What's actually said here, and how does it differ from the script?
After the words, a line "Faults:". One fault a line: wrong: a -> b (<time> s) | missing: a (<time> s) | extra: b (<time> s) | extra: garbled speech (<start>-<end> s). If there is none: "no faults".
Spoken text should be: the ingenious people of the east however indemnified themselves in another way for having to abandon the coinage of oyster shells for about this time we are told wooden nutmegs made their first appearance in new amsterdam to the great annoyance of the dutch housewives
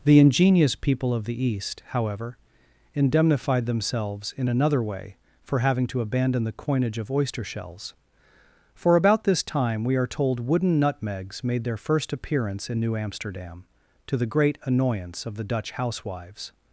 the ingenious people of the east however indemnified themselves in another way for having to abandon the coinage of oyster shells for about this time we are told wooden nutmegs made their first appearance in new amsterdam to the great annoyance of the dutch housewives
Faults:
no faults